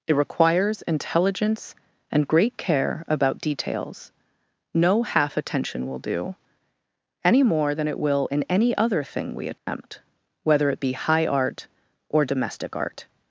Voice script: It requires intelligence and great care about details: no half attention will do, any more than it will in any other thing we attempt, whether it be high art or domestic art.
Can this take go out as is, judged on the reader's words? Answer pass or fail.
pass